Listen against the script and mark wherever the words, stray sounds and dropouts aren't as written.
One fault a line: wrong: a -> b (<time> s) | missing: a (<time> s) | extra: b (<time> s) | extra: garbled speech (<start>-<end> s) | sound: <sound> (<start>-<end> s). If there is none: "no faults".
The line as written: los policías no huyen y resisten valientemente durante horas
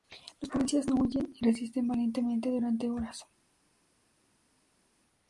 no faults